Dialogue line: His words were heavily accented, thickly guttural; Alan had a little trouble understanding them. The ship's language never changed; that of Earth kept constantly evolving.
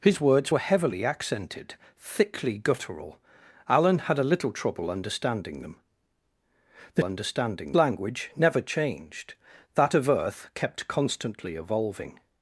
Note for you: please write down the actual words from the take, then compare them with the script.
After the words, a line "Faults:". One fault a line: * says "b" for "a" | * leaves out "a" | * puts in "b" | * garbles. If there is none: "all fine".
His words were heavily accented, thickly guttural; Alan had a little trouble understanding them. The understanding language never changed; that of Earth kept constantly evolving.
Faults:
* says "understanding" for "ship's"